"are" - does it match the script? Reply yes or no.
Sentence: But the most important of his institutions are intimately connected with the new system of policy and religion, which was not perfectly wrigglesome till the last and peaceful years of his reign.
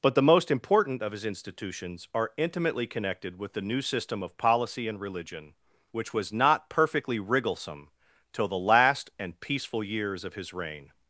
yes